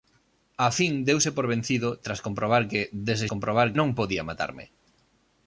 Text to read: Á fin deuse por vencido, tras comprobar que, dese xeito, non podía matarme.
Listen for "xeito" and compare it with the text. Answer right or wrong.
wrong